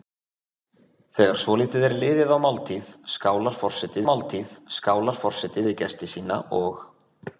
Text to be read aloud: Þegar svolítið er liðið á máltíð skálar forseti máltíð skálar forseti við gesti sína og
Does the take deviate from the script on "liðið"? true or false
false